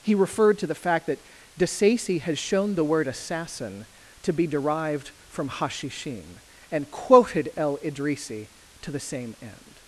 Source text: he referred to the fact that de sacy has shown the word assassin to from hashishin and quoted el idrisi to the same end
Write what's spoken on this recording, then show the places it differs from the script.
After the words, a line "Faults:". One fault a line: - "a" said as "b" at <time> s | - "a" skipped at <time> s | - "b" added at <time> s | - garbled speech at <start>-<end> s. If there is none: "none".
he referred to the fact that de sacy has shown the word assassin to be derived from hashishin and quoted el idrisi to the same end
Faults:
- "be derived" added at 4.3 s